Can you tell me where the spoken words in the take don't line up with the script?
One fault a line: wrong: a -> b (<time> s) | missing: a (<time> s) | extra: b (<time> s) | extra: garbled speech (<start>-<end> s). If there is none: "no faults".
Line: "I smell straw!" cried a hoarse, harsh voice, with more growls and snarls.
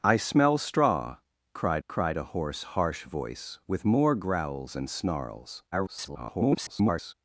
extra: cried (1.9 s)
extra: garbled speech (5.7-7.1 s)